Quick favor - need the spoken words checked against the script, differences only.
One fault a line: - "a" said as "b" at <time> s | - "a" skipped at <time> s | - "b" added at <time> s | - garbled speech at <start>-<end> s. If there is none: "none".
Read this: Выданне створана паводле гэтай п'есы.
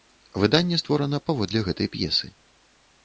none